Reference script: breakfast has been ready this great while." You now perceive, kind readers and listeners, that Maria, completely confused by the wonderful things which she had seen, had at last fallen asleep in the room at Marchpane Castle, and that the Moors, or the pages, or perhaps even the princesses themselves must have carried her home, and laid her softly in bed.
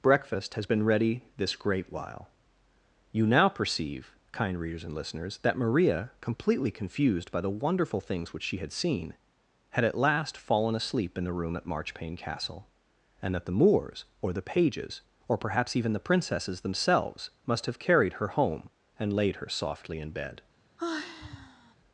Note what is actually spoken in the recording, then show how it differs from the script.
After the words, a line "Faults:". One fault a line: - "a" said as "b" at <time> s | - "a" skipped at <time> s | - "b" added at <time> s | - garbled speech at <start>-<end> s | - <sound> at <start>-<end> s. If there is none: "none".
breakfast has been ready this great while." You now perceive, kind readers and listeners, that Maria, completely confused by the wonderful things which she had seen, had at last fallen asleep in the room at Marchpane Castle, and that the Moors, or the pages, or perhaps even the princesses themselves must have carried her home, and laid her softly in bed.
Faults:
- sigh at 20.8-21.7 s